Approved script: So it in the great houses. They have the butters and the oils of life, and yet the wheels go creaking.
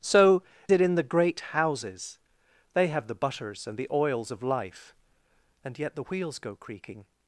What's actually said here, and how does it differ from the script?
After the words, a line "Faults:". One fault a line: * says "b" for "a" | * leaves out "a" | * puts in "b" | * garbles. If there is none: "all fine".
So it in the great houses. They have the butters and the oils of life, and yet the wheels go creaking.
Faults:
all fine